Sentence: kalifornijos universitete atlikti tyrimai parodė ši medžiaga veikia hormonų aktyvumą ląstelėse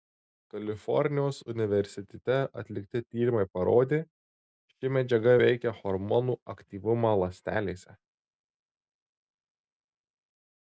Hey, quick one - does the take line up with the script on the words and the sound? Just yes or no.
yes